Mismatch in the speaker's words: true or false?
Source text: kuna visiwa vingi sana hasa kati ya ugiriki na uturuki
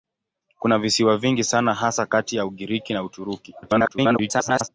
true